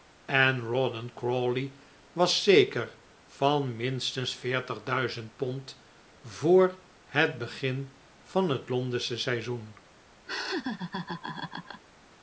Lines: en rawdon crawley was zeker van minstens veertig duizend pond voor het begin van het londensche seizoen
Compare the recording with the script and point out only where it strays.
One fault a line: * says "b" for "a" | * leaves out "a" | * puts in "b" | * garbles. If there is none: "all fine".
all fine